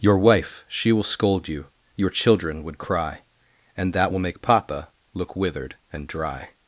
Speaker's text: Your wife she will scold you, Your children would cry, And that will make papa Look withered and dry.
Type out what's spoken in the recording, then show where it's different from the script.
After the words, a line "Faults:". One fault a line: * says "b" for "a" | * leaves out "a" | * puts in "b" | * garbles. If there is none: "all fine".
Your wife she will scold you, Your children would cry, And that will make papa Look withered and dry.
Faults:
all fine